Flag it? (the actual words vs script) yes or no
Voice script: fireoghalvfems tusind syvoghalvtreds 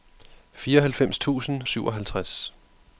no